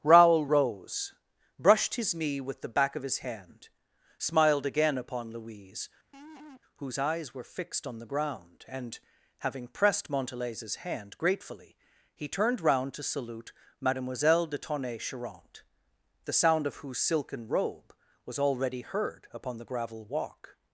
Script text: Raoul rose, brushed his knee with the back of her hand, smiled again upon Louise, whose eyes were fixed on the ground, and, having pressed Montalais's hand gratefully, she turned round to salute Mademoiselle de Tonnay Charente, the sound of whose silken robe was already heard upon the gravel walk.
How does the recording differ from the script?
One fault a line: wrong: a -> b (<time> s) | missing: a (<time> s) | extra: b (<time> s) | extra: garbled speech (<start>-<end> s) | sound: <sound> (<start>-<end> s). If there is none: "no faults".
wrong: her -> his (3.0 s)
sound: laugh (6.1-6.6 s)
wrong: she -> he (12.1 s)